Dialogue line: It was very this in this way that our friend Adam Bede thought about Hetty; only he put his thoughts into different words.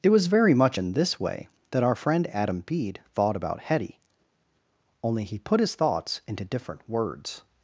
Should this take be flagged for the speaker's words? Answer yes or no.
yes